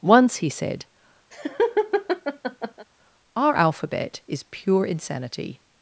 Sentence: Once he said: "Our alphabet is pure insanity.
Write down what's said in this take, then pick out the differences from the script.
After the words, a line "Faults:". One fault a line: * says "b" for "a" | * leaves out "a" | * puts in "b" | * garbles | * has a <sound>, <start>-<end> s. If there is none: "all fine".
Once he said: "Our alphabet is pure insanity.
Faults:
* has a laugh, 1.3-2.9 s